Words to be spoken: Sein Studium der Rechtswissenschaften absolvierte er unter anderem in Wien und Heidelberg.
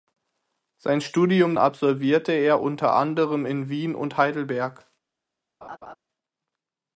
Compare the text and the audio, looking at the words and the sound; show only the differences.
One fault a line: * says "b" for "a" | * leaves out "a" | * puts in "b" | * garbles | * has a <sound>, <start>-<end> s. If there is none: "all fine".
* leaves out "der Rechtswissenschaften"
* has a laugh, 5.6-6.0 s